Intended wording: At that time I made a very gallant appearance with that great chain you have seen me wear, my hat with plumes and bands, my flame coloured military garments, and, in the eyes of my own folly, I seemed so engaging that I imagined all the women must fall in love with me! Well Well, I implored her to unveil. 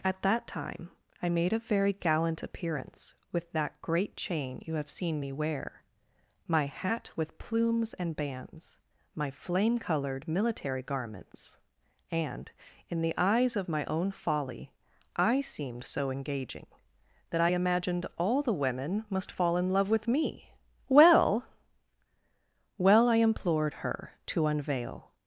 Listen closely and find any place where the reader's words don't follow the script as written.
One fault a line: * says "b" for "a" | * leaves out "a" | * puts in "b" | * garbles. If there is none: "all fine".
all fine